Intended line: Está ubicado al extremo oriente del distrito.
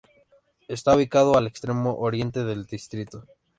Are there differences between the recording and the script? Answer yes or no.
no